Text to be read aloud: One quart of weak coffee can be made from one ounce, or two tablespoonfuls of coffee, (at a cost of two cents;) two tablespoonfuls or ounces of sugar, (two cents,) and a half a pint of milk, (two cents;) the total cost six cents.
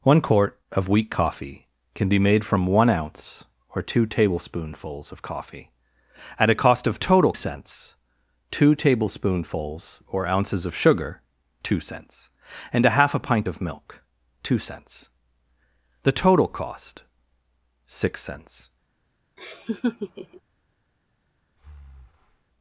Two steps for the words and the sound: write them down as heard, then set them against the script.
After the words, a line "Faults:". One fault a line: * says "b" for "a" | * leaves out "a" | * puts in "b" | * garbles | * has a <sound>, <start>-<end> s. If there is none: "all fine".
One quart of weak coffee can be made from one ounce, or two tablespoonfuls of coffee, (at a cost of total cents;) two tablespoonfuls or ounces of sugar, (two cents,) and a half a pint of milk, (two cents;) the total cost six cents.
Faults:
* says "total" for "two"
* has a laugh, 19.4-20.4 s
* has a breath, 21.6-22.5 s